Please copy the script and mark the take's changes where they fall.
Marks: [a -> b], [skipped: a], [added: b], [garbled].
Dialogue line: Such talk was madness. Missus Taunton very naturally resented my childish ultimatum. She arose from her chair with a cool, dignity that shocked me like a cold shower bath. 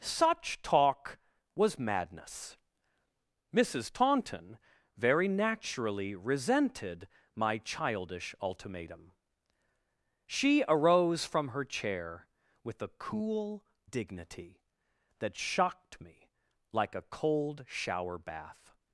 Such talk was madness. Missus Taunton very naturally resented my childish ultimatum. She arose from her chair with a cool, dignity that shocked me like a cold shower bath.